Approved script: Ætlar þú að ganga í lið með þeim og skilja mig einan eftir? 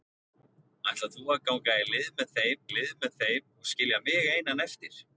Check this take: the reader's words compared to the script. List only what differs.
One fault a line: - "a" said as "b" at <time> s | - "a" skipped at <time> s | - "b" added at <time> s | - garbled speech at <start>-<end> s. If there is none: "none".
- "lið með þeim" added at 2.7 s